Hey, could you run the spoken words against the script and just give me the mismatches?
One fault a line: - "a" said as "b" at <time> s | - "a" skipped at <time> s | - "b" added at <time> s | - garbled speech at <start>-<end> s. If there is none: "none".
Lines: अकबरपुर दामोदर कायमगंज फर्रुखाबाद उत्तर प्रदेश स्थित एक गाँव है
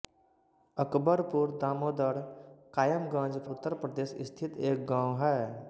- "फर्रुखाबाद" skipped at 3.4 s